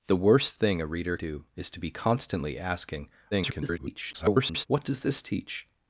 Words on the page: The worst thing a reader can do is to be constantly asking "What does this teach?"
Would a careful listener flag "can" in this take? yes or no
yes